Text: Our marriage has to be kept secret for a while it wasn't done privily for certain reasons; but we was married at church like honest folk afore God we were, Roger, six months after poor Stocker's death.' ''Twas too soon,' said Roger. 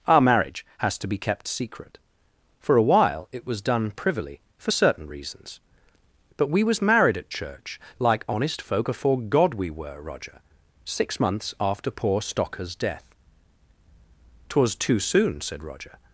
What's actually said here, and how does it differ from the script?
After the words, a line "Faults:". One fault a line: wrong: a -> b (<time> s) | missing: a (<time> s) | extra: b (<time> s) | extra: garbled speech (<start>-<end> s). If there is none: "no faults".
Our marriage has to be kept secret for a while it was done privily for certain reasons; but we was married at church like honest folk afore God we were, Roger, six months after poor Stocker's death.' ''Twas too soon,' said Roger.
Faults:
wrong: wasn't -> was (3.5 s)